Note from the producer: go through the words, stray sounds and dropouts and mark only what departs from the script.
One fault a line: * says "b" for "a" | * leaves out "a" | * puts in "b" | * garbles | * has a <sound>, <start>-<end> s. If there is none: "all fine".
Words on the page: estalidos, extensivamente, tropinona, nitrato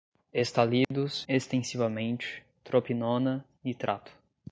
* has a dropout, 0.8-0.9 s